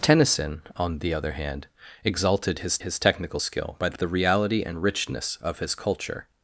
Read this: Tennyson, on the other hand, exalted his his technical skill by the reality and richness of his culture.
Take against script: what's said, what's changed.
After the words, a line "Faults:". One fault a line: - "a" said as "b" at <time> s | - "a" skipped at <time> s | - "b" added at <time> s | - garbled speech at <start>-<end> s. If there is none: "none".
Tennyson, on the other hand, exalted his his technical skill by the reality and richness of his culture.
Faults:
none